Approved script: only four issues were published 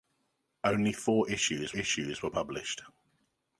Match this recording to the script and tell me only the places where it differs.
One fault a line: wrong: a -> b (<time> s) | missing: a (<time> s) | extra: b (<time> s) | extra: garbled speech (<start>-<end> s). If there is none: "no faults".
extra: issues (1.8 s)